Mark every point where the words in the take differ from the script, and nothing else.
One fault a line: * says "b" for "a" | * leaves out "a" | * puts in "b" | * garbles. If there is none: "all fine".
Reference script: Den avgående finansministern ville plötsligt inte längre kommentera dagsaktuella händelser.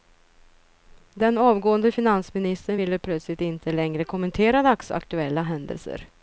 all fine